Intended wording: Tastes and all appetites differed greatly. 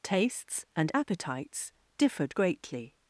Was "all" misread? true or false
true